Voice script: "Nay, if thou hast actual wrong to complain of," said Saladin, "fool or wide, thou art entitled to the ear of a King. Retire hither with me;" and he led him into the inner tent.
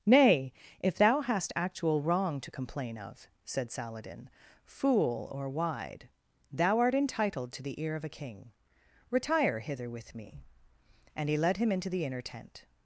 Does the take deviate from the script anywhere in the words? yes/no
no